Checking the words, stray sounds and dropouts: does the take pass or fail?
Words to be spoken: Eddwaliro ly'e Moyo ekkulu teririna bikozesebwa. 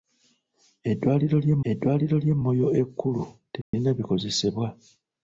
fail